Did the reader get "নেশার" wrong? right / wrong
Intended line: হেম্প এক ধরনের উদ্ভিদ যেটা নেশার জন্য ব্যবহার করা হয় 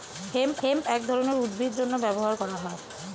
wrong